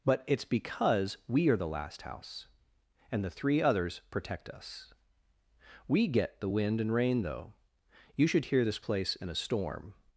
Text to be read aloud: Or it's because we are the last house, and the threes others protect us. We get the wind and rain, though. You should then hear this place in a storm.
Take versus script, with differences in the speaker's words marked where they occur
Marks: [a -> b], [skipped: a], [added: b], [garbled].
[Or -> But] it's because we are the last house, and the [threes -> three] others protect us. We get the wind and rain, though. You should [skipped: then] hear this place in a storm.